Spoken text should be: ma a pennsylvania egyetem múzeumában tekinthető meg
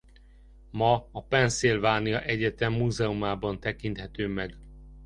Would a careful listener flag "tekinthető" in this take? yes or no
no